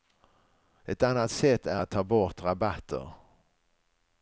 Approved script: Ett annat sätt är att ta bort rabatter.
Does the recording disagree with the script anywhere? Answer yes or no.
no